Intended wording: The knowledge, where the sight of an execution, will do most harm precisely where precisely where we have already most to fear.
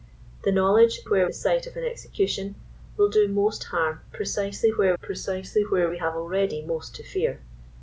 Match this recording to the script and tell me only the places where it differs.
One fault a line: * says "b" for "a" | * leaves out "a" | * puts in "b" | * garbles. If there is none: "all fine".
all fine